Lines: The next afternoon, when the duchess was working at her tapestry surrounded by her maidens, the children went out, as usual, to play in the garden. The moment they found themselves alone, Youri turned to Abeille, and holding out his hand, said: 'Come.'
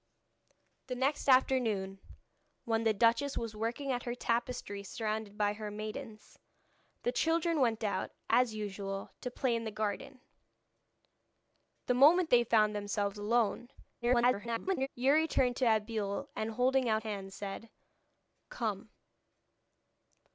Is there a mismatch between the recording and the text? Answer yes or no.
yes